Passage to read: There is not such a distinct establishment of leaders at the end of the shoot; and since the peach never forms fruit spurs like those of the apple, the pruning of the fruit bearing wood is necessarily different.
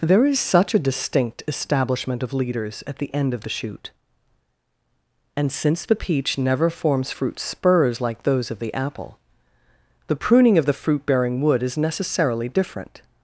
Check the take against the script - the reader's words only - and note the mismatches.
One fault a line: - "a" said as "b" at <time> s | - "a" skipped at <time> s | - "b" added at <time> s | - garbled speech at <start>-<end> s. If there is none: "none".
- "not" skipped at 0.4 s